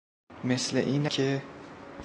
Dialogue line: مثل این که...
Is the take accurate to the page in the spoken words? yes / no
yes